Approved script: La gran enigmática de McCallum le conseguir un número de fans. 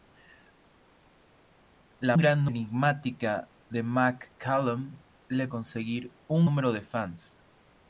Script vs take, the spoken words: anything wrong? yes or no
no